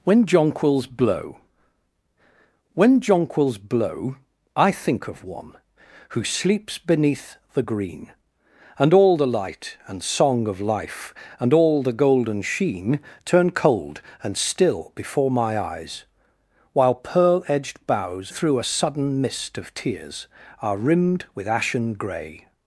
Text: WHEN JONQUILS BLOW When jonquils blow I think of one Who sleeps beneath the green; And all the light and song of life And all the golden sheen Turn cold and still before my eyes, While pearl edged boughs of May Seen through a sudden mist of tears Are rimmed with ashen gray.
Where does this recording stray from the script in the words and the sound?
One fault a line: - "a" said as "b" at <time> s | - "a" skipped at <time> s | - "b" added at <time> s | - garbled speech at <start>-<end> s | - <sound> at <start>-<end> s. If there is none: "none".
- "of May Seen" skipped at 18.3 s